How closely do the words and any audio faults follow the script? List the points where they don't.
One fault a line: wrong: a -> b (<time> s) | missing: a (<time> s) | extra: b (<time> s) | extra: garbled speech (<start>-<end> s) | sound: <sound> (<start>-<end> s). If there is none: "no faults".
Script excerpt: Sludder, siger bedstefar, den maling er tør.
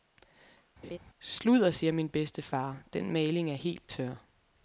sound: laugh (0.8-1.0 s)
extra: min (1.9 s)
extra: helt (3.5 s)